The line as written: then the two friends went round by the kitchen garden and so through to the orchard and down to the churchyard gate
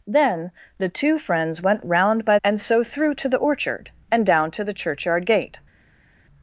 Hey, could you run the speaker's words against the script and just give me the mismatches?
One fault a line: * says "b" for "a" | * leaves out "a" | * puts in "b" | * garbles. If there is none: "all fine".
* leaves out "the kitchen garden"